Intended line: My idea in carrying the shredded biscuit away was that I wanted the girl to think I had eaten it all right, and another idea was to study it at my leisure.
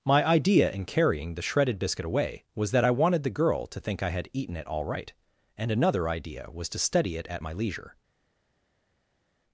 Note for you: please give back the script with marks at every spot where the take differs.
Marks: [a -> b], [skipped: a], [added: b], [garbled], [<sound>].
My idea in carrying the shredded biscuit away was that I wanted the girl to think I had eaten it all right, and another idea was to study it at my leisure.